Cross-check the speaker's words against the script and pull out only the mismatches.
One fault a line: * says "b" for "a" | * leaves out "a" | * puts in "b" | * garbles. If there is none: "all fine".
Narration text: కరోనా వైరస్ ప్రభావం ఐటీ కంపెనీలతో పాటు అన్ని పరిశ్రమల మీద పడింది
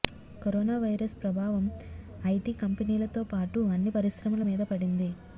all fine